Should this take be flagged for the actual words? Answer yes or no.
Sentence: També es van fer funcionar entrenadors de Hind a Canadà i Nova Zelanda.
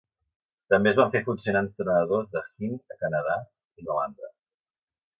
yes